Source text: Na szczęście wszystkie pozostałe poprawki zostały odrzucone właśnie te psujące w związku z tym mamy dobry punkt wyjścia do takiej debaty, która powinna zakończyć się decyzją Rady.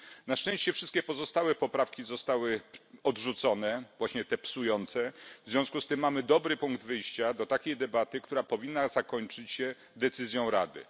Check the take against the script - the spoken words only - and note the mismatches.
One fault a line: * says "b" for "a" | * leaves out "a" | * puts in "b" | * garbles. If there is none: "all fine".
all fine